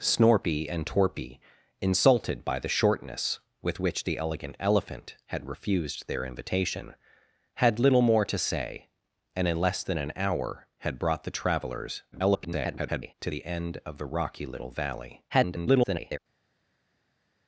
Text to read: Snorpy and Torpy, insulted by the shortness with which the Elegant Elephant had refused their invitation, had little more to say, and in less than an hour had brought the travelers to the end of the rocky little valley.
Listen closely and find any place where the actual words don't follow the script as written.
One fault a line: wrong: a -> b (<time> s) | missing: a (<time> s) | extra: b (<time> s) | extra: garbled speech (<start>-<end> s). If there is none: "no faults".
extra: garbled speech (12.1-13.1 s)
extra: garbled speech (15.3-16.2 s)